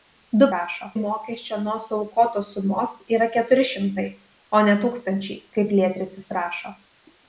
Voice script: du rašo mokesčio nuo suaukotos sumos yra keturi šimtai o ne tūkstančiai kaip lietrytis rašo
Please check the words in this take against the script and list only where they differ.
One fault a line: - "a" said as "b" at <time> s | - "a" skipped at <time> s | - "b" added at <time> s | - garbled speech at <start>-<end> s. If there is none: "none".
none